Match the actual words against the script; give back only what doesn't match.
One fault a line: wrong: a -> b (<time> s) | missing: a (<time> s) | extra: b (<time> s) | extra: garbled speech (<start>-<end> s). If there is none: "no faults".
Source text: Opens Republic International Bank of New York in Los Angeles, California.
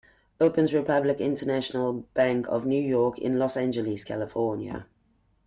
no faults